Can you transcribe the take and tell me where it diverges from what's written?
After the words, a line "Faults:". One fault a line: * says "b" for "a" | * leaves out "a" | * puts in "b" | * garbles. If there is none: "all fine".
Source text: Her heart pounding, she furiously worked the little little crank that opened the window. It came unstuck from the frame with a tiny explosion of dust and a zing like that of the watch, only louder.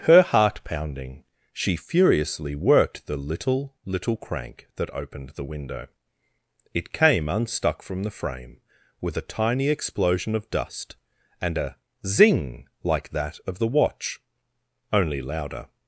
Her heart pounding, she furiously worked the little little crank that opened the window. It came unstuck from the frame with a tiny explosion of dust and a zing like that of the watch, only louder.
Faults:
all fine